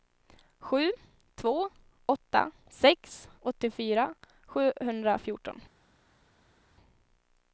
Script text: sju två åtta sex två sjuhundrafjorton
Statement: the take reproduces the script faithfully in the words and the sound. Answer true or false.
false